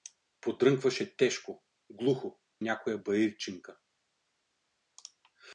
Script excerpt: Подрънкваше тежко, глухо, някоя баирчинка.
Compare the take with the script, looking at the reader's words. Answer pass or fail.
pass